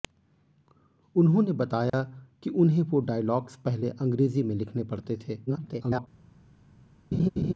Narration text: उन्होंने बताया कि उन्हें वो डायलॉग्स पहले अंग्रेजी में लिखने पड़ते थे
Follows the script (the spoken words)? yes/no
no